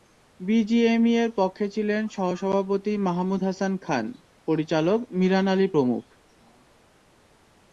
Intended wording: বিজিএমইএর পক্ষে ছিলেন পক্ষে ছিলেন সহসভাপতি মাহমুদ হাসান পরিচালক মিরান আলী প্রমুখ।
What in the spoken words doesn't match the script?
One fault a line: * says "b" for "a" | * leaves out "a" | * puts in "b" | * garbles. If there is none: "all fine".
* leaves out "পক্ষে ছিলেন"
* puts in "খান"